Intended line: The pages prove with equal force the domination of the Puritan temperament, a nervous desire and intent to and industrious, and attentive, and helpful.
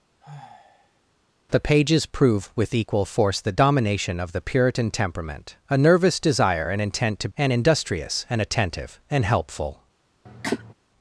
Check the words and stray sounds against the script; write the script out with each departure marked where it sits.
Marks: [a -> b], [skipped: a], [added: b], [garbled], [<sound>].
[sigh] The pages prove with equal force the domination of the Puritan temperament, a nervous desire and intent to and industrious, and attentive, and helpful. [cough]